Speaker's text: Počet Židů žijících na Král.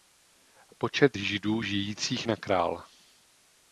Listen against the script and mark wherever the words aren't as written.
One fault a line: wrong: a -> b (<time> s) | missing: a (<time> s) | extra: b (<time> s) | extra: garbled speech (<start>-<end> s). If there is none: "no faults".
no faults